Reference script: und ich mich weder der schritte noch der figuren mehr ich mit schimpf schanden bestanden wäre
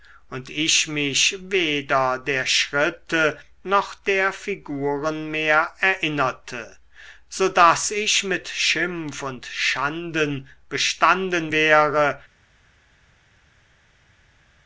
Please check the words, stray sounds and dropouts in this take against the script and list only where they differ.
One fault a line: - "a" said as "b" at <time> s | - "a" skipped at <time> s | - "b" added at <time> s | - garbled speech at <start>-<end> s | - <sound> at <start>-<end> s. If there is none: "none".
- "erinnerte so daß" added at 5.8 s
- "und" added at 9.2 s